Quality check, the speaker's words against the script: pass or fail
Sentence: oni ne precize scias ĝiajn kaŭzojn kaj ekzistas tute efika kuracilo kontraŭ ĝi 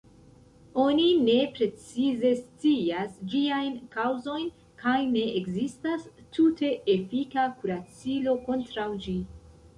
fail